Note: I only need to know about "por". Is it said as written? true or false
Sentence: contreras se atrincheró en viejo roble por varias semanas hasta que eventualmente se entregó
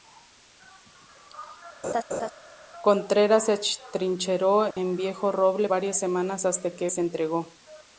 false